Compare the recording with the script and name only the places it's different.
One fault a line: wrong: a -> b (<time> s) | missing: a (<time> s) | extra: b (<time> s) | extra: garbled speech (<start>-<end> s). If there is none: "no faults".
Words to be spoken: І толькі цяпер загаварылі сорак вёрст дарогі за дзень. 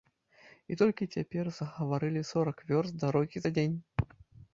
no faults